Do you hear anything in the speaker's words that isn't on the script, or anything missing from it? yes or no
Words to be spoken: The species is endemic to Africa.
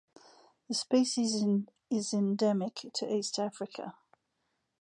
yes